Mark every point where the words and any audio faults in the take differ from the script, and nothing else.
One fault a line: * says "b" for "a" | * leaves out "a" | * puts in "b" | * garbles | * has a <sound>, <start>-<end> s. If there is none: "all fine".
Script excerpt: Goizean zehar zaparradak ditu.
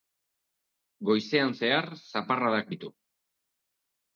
all fine